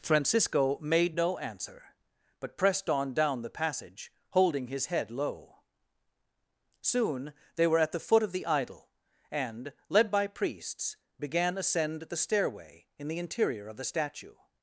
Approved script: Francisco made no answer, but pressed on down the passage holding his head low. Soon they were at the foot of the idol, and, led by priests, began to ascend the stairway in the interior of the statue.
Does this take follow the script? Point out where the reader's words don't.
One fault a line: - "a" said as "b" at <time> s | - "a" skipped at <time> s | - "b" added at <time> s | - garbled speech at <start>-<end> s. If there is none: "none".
- "to" skipped at 11.6 s